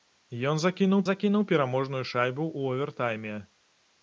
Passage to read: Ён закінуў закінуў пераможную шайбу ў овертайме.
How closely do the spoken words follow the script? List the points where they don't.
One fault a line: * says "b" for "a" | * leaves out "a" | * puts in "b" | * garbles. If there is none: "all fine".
all fine